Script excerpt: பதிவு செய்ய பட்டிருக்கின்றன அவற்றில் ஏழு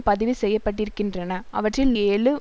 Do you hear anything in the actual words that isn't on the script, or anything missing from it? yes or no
no